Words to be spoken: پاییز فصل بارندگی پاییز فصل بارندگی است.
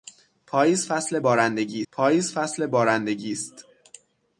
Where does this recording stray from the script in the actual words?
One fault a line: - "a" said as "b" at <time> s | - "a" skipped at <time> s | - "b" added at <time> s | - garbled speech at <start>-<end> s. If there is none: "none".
none